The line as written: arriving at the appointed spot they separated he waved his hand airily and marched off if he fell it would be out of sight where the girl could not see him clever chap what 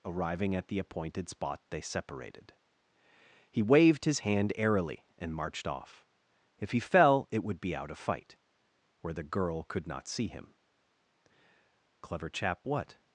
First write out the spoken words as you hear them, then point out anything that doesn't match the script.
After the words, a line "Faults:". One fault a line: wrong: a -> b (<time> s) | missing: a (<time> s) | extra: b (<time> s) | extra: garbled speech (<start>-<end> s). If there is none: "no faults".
arriving at the appointed spot they separated he waved his hand airily and marched off if he fell it would be out of fight where the girl could not see him clever chap what
Faults:
wrong: sight -> fight (8.0 s)